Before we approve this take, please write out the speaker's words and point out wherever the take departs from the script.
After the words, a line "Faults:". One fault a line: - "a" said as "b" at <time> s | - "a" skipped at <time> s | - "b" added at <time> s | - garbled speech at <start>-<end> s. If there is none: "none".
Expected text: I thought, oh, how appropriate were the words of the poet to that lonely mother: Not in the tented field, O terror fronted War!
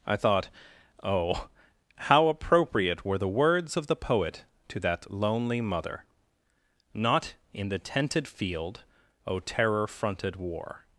I thought, oh, how appropriate were the words of the poet to that lonely mother: Not in the tented field, O terror fronted War!
Faults:
none